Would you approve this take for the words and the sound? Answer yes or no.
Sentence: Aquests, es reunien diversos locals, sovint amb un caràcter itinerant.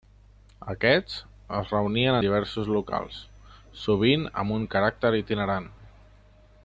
yes